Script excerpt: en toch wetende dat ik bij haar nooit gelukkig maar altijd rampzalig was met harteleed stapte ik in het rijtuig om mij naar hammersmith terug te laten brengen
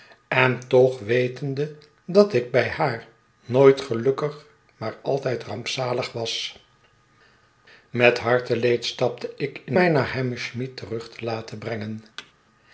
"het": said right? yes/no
no